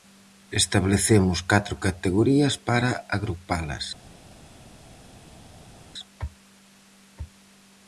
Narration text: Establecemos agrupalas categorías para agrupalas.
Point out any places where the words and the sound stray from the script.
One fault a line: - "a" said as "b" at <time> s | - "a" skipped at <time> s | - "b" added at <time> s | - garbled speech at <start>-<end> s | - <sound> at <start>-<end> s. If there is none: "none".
- "agrupalas" said as "catro" at 1.5 s